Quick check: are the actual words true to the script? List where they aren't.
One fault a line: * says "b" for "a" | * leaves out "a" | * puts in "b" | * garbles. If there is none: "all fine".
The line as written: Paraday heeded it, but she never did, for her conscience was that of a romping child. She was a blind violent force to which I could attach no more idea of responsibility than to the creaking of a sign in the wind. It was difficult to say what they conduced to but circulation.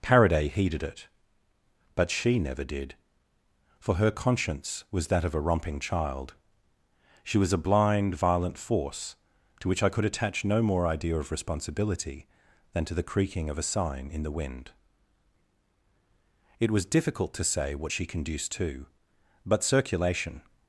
* says "she" for "they"